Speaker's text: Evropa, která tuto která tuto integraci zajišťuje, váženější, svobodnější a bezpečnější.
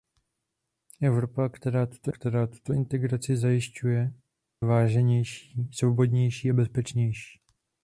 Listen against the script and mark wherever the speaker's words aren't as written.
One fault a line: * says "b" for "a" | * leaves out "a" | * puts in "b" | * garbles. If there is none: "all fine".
all fine